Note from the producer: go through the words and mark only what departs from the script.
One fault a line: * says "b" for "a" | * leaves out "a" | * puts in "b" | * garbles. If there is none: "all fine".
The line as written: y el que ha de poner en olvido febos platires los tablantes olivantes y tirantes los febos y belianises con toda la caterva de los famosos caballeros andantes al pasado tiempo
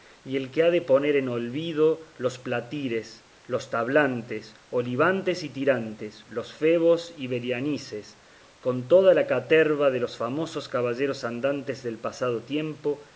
* says "los" for "febos"
* says "del" for "al"